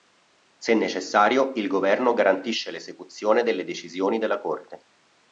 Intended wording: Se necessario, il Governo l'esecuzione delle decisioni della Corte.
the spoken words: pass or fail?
fail